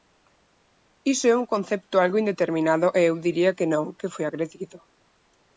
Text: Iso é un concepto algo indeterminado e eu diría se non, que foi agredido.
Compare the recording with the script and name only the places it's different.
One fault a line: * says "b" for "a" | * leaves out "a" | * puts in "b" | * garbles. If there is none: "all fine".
* says "que" for "se"